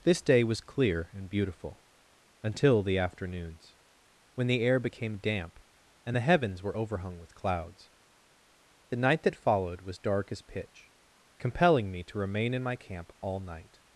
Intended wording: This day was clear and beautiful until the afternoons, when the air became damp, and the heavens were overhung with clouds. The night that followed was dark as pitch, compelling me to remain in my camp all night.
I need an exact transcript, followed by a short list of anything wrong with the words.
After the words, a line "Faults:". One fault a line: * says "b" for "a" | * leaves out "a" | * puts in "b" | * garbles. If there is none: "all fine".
This day was clear and beautiful until the afternoons, when the air became damp, and the heavens were overhung with clouds. The night that followed was dark as pitch, compelling me to remain in my camp all night.
Faults:
all fine